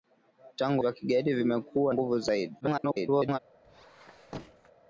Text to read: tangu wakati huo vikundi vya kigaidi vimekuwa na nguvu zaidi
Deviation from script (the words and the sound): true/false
true